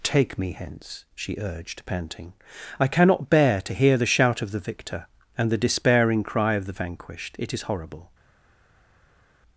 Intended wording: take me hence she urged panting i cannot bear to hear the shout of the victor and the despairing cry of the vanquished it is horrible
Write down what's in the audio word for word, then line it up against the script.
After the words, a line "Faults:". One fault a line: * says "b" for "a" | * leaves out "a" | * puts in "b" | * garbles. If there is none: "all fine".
take me hence she urged panting i cannot bear to hear the shout of the victor and the despairing cry of the vanquished it is horrible
Faults:
all fine